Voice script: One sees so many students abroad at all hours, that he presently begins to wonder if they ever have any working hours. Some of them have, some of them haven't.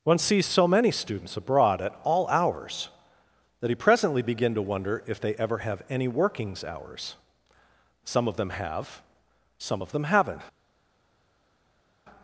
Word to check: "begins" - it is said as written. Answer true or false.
false